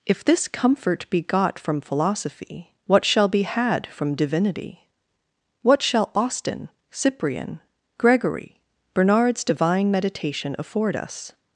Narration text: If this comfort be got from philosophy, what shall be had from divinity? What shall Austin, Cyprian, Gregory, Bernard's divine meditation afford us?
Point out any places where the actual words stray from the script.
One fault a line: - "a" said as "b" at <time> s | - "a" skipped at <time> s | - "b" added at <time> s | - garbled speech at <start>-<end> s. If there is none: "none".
none